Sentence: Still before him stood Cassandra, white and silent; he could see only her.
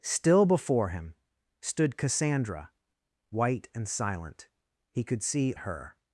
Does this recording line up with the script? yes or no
no